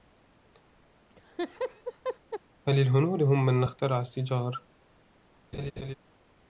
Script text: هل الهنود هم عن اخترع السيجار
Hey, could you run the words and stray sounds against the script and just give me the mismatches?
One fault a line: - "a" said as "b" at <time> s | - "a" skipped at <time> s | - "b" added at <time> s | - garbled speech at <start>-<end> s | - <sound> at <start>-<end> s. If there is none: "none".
- laugh at 1.1-2.4 s
- "عن" said as "من" at 3.5 s
- laugh at 5.5-5.9 s